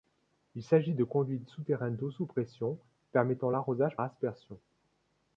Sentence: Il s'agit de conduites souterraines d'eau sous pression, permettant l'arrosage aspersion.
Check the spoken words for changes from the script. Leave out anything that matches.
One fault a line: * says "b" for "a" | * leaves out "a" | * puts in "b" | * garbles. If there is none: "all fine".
all fine